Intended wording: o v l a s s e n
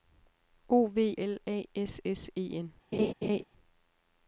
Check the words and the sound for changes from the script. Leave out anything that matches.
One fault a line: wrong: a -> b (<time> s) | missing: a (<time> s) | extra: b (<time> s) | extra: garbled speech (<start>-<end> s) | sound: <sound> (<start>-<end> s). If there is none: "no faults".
sound: laugh (2.9-3.4 s)